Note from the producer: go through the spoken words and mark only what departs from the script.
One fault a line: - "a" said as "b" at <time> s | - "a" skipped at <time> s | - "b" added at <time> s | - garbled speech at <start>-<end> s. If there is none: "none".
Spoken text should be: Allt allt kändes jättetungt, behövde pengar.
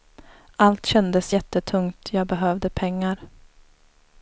- "allt" skipped at 0.8 s
- "jag" added at 2.1 s